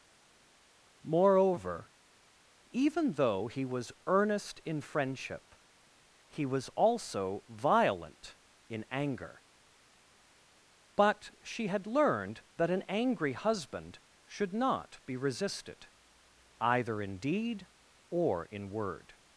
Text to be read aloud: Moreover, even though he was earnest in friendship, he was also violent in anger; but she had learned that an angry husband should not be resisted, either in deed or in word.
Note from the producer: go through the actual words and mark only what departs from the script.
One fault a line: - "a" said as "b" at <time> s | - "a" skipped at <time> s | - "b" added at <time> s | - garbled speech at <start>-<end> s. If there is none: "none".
none